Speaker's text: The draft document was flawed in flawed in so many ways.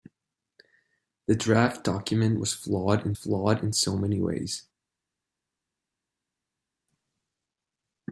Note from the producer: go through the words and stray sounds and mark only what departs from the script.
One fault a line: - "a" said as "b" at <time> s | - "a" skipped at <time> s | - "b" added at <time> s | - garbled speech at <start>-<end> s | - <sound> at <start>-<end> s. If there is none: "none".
none